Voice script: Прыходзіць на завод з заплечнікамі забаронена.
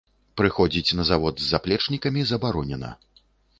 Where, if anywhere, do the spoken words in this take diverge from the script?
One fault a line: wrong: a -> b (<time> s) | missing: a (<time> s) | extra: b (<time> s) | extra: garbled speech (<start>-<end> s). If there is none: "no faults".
no faults